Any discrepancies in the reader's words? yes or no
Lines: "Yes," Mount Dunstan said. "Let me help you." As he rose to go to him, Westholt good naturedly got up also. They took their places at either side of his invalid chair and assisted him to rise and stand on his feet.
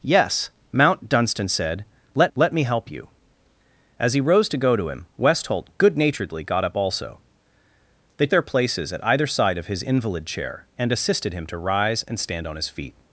yes